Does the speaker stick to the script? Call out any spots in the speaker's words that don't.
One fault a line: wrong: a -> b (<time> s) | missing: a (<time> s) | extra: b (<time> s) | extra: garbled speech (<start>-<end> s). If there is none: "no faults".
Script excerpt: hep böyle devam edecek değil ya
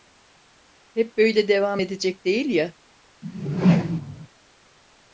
no faults